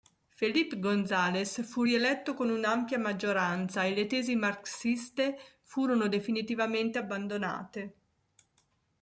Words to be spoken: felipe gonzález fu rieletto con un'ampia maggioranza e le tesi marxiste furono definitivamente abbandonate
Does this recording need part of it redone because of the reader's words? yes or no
no